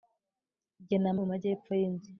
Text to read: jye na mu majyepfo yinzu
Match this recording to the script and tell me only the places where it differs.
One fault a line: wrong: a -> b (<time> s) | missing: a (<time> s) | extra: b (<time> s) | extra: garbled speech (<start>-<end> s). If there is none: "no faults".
no faults